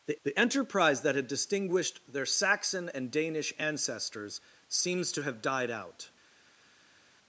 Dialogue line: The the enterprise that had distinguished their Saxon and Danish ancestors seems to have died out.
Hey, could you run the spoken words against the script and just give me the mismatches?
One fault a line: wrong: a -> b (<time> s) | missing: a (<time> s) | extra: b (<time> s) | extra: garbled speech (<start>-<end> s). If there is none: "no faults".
no faults